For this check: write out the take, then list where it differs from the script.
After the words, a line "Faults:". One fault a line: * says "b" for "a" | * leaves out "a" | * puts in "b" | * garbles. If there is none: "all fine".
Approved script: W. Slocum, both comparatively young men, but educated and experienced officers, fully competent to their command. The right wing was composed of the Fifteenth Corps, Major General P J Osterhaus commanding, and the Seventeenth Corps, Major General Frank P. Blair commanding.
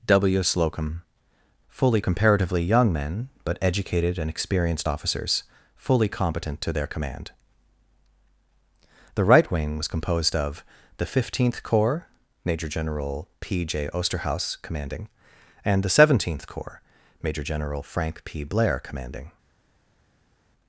W. Slocum, fully comparatively young men, but educated and experienced officers, fully competent to their command. The right wing was composed of the Fifteenth Corps, Major General P J Osterhaus commanding, and the Seventeenth Corps, Major General Frank P. Blair commanding.
Faults:
* says "fully" for "both"